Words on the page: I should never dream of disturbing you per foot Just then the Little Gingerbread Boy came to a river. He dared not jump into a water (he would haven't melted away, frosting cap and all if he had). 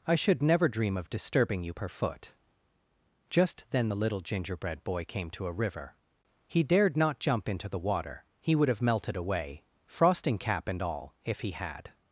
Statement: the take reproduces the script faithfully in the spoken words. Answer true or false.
false